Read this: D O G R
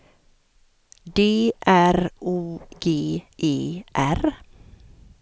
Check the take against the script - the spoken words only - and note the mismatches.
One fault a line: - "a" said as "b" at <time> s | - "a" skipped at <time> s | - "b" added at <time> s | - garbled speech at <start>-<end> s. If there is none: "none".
- "R" added at 1.6 s
- "E" added at 3.4 s